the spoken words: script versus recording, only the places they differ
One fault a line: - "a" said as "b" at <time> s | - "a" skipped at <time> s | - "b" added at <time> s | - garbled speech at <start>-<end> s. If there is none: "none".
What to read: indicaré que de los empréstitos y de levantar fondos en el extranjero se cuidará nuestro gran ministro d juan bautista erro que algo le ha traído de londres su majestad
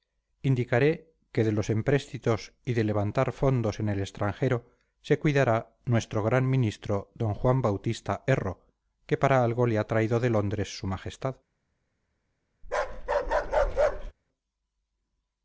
- "para" added at 9.2 s